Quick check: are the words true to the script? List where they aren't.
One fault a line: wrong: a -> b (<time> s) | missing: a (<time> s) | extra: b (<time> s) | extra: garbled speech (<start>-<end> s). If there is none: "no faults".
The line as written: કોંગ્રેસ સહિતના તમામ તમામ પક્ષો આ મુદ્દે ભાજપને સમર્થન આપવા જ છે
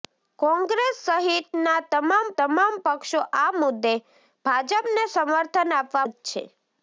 no faults